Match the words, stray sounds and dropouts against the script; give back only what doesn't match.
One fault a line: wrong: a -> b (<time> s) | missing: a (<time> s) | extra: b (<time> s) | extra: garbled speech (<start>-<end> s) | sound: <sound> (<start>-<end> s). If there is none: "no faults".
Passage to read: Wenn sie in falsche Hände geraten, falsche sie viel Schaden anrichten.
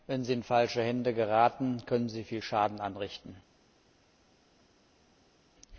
wrong: falsche -> können (1.9 s)